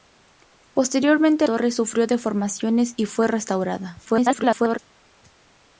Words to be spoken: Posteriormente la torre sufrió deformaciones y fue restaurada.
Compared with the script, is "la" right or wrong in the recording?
wrong